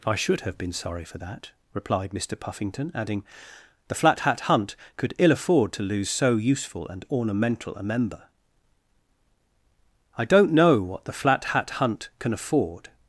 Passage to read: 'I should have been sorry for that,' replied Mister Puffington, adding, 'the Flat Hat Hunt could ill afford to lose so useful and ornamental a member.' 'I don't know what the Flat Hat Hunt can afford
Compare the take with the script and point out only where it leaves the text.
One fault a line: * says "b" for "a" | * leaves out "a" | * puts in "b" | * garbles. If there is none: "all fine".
all fine